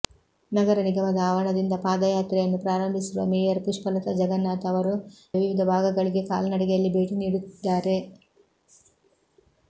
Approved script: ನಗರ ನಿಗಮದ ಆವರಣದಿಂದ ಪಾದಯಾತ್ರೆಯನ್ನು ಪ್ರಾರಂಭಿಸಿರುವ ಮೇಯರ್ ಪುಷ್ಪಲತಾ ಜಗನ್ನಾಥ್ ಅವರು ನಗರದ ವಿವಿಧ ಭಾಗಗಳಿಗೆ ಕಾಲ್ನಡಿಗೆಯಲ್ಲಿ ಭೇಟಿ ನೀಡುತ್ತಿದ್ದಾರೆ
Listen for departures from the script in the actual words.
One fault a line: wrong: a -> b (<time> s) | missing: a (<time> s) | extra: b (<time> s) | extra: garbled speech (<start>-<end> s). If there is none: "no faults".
missing: ನಗರದ (4.9 s)